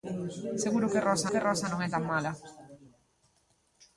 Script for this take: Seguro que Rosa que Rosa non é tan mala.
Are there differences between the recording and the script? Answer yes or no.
no